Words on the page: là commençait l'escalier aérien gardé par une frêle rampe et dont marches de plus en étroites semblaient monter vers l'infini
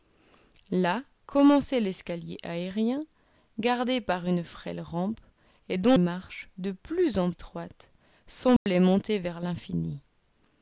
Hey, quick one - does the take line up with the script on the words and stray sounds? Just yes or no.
no